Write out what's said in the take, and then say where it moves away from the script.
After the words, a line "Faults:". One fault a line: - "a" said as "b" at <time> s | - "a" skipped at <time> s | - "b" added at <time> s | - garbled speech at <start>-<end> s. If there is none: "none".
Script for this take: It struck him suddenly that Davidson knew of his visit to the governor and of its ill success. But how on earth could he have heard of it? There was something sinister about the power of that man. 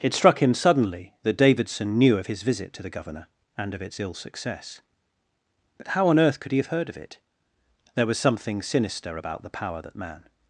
It struck him suddenly that Davidson knew of his visit to the governor and of its ill success. But how on earth could he have heard of it? There was something sinister about the power that man.
Faults:
- "of" skipped at 9.8 s